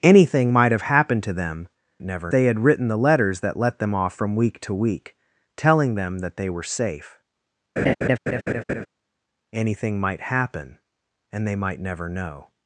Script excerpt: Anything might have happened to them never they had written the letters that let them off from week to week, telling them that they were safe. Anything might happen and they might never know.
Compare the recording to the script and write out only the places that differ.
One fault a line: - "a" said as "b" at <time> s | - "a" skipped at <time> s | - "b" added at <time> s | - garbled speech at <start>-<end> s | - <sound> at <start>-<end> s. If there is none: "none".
- laugh at 7.8-8.9 s